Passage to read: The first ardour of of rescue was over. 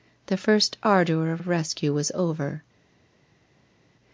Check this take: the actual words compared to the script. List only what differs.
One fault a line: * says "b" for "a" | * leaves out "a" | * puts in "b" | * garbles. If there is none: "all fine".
all fine